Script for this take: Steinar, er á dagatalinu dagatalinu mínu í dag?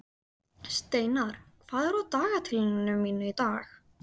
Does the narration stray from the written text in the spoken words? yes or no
yes